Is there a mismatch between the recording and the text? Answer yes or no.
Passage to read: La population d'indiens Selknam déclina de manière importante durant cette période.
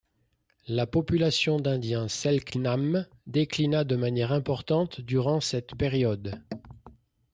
no